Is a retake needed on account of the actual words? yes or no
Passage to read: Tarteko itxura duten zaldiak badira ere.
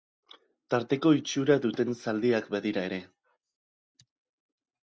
no